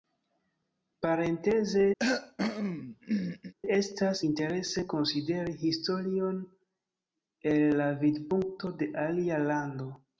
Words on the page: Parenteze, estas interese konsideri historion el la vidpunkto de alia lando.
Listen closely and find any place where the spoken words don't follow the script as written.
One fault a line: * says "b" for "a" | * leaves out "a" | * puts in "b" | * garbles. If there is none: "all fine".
all fine